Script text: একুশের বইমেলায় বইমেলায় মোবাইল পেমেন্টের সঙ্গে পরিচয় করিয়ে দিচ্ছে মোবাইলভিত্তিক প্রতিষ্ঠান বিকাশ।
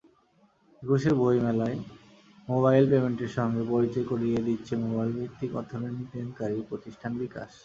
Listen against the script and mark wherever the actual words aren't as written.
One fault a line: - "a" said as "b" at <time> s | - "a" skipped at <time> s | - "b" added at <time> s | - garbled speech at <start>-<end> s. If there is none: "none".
- "বইমেলায়" skipped at 1.8 s
- "অর্থলেনদেনকারী" added at 5.6 s